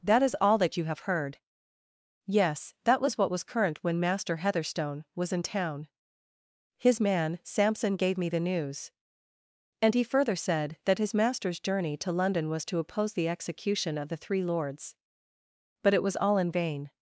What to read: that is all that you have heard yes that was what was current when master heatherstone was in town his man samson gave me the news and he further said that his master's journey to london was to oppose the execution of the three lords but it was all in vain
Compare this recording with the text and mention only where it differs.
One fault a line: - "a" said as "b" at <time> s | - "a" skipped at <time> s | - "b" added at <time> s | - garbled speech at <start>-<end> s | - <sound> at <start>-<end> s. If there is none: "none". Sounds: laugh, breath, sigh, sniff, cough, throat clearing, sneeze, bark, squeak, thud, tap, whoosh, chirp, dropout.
none